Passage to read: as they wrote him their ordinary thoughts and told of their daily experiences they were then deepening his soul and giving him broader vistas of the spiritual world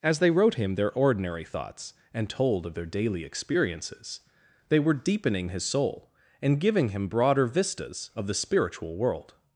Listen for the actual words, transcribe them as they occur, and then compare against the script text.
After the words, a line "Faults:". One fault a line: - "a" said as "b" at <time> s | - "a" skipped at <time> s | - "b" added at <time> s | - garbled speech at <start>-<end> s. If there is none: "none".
as they wrote him their ordinary thoughts and told of their daily experiences they were deepening his soul and giving him broader vistas of the spiritual world
Faults:
- "then" skipped at 4.9 s